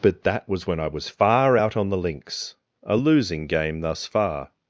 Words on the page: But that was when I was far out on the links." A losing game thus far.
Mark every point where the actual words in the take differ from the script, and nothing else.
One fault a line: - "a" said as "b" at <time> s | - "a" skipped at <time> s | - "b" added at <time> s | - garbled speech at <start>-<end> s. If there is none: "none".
none